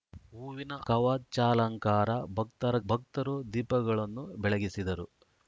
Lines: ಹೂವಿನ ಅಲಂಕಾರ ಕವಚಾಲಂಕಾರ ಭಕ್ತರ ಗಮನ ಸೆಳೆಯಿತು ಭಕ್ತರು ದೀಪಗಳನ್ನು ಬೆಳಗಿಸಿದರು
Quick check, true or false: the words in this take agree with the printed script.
false